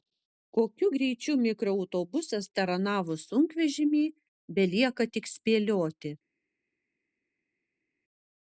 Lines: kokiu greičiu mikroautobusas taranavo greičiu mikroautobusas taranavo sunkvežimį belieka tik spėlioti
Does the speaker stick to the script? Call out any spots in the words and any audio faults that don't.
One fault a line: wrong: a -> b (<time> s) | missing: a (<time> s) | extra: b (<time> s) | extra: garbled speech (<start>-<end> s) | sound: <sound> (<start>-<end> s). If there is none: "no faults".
missing: greičiu mikroautobusas taranavo (3.2 s)